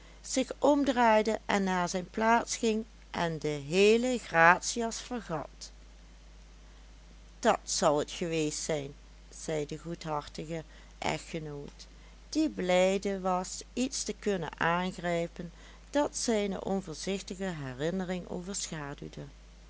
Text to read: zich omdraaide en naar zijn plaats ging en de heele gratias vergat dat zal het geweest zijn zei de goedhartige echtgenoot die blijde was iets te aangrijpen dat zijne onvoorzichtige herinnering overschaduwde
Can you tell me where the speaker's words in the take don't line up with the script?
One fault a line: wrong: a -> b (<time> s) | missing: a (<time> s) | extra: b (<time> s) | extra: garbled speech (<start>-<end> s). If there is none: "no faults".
extra: kunnen (14.1 s)